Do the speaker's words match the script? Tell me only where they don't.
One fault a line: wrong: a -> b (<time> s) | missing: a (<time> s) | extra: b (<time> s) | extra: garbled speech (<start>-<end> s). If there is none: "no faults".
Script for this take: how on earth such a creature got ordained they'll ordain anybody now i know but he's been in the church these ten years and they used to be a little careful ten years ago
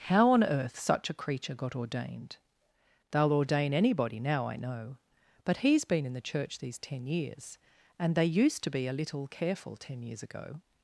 no faults